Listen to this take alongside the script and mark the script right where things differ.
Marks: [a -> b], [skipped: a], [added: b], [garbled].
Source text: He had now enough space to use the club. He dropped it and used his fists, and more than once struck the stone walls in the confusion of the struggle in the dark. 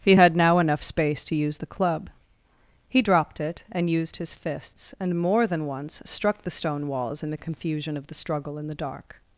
He had now enough space to use the club. He dropped it and used his fists, and more than once struck the stone walls in the confusion of the struggle in the dark.